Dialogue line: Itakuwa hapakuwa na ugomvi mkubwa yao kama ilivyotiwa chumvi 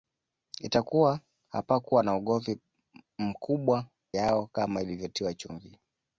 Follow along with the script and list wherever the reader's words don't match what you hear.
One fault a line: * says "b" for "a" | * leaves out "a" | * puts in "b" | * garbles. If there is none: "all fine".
all fine